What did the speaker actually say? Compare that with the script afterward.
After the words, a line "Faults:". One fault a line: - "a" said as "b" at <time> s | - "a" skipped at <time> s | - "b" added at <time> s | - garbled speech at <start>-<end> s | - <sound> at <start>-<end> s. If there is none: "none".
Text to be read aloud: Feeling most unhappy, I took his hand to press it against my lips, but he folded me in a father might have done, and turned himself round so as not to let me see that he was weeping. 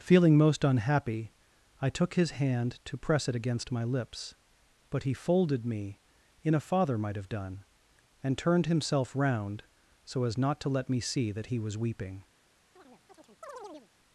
Feeling most unhappy, I took his hand to press it against my lips, but he folded me in a father might have done, and turned himself round so as not to let me see that he was weeping.
Faults:
- chirp at 12.8-13.9 s